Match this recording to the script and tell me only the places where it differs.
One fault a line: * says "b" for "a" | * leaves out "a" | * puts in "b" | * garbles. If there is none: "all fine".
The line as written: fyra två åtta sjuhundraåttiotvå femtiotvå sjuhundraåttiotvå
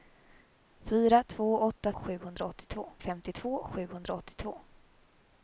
all fine